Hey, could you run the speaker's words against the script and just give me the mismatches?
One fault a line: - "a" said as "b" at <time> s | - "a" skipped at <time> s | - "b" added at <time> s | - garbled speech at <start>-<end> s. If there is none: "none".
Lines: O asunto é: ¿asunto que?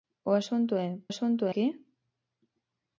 none